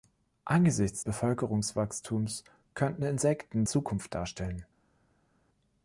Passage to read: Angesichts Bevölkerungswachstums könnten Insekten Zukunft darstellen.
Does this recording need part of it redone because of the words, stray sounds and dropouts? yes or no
no